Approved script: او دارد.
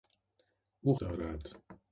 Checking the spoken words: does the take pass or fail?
pass